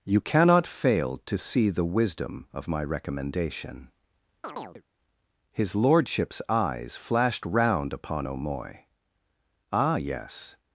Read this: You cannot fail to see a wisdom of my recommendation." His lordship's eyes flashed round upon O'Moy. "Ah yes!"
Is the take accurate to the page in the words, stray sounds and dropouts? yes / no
no